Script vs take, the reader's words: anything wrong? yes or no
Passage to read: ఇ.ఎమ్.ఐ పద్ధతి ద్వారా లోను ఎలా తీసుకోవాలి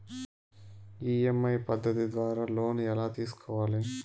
no